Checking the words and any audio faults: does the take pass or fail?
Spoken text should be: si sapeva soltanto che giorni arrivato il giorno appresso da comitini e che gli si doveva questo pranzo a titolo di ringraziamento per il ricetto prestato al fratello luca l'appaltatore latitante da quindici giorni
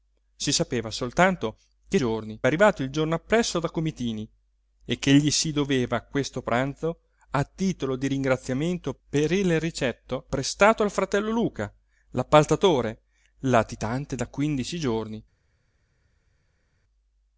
pass